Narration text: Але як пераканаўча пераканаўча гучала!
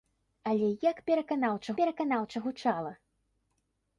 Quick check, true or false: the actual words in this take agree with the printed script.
true